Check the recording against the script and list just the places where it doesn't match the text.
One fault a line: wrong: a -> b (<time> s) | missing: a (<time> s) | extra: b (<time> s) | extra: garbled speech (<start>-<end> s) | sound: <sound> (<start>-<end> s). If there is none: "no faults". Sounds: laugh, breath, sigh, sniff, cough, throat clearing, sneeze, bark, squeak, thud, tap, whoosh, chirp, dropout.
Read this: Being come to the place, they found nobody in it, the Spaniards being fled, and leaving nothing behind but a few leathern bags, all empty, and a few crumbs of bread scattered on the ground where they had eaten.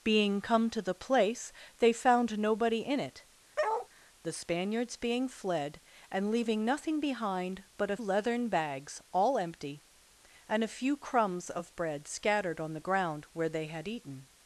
sound: bark (3.6-3.9 s)
missing: few (8.0 s)